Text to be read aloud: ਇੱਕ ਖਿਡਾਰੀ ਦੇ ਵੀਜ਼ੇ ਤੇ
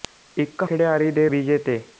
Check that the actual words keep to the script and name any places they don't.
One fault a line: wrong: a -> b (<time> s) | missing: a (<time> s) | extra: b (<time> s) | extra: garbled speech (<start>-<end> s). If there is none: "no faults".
no faults